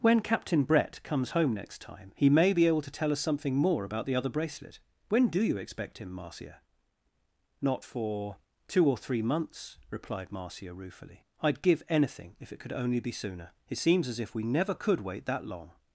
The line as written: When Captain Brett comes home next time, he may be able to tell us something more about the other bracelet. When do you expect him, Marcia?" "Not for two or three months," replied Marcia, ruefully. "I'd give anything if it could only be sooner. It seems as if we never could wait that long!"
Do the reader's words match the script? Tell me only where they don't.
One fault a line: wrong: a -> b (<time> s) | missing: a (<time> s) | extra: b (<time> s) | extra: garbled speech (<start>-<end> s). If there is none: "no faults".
no faults